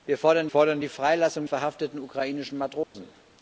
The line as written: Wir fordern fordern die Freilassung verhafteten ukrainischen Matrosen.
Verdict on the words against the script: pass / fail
pass